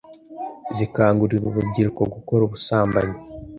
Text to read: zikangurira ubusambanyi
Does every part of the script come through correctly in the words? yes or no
no